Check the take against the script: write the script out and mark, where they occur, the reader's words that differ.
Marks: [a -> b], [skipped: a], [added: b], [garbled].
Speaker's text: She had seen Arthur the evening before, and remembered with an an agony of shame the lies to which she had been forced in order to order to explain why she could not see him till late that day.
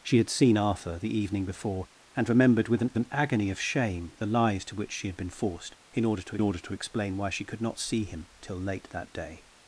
She had seen Arthur the evening before, and remembered with an an agony of shame the lies to which she had been forced in order to order to explain why she could not see him till late that day.